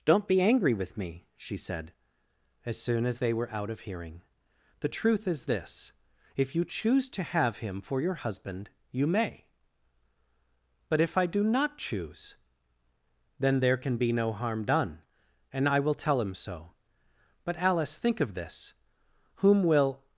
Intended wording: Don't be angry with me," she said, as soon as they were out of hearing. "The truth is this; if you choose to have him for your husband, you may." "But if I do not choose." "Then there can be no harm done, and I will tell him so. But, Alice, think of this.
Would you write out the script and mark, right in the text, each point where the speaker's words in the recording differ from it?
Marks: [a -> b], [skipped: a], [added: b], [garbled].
Don't be angry with me," she said, as soon as they were out of hearing. "The truth is this; if you choose to have him for your husband, you may." "But if I do not choose." "Then there can be no harm done, and I will tell him so. But, Alice, think of this. [added: Whom will]